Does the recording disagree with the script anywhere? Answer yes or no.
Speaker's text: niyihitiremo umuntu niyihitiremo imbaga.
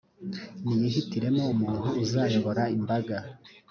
yes